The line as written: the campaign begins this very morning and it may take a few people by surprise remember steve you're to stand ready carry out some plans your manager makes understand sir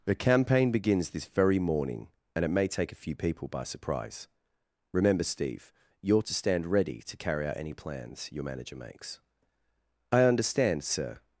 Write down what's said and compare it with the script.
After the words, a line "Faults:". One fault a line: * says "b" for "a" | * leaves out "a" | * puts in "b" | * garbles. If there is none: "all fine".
the campaign begins this very morning and it may take a few people by surprise remember steve you're to stand ready to carry out any plans your manager makes i understand sir
Faults:
* puts in "to"
* says "any" for "some"
* puts in "i"